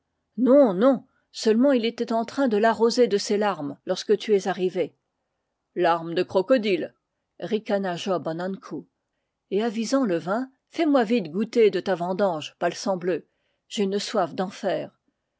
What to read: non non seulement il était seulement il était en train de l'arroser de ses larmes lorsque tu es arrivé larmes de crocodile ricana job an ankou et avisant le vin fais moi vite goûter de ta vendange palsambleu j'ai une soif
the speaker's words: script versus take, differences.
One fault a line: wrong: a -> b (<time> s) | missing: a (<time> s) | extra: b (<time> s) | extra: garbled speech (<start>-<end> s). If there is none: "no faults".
missing: seulement il était (2.1 s)